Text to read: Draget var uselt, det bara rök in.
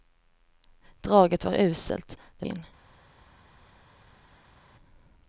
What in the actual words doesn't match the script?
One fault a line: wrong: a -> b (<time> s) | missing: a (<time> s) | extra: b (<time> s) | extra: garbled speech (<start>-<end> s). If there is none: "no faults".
missing: bara rök (2.5 s)